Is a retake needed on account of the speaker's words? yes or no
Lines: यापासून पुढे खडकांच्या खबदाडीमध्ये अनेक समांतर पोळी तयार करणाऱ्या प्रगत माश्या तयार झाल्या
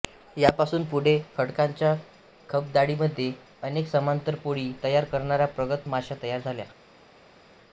no